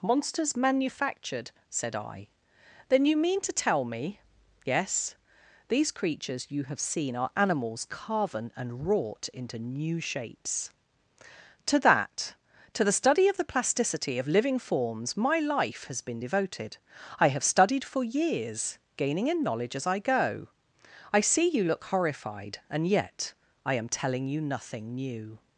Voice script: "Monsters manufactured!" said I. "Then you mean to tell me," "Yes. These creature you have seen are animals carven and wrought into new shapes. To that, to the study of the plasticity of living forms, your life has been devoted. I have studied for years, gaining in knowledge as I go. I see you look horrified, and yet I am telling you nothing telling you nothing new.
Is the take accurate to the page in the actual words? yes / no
no